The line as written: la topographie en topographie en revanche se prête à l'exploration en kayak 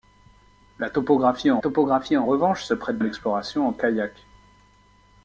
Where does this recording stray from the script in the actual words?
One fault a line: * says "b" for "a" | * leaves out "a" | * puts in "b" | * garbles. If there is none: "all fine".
all fine